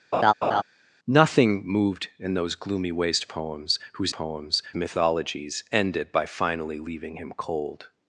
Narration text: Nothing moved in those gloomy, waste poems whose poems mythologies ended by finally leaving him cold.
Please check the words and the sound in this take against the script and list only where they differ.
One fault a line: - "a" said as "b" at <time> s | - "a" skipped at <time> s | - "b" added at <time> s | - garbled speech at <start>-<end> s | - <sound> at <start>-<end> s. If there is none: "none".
- laugh at 0.1-0.6 s